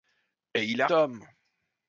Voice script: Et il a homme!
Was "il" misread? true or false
false